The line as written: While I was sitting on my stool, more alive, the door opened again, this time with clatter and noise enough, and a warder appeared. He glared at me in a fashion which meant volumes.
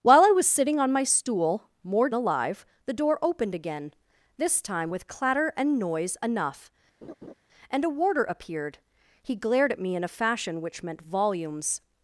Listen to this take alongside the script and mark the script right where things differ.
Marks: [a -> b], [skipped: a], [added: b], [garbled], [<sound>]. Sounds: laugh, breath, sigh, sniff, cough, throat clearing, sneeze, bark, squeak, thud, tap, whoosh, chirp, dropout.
While I was sitting on my stool, more alive, the door opened again, this time with clatter and noise enough, [laugh] and a warder appeared. He glared at me in a fashion which meant volumes.